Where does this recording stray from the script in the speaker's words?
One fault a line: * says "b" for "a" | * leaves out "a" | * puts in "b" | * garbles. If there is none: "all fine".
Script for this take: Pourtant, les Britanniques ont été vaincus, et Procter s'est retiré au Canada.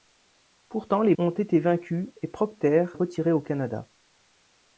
* leaves out "Britanniques"
* leaves out "s'est"